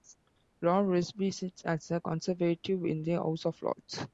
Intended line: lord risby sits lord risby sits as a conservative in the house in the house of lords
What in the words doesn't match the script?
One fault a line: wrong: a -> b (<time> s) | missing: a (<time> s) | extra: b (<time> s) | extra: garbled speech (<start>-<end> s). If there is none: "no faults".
missing: lord risby sits (1.6 s)
missing: in the house (3.5 s)